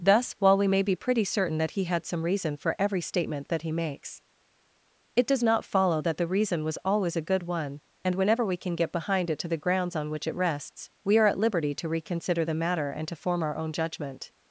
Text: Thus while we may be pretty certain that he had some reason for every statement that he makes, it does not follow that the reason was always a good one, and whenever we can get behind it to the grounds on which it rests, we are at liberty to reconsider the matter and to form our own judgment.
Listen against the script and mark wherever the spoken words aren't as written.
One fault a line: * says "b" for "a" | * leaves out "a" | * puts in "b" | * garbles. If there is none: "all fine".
all fine